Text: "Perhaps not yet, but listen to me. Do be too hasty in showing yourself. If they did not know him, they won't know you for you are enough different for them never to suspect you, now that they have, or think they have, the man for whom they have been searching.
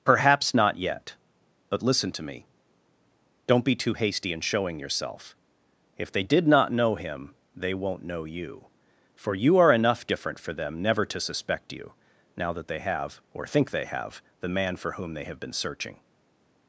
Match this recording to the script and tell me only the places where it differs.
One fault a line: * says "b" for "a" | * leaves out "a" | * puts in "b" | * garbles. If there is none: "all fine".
* says "Don't" for "Do"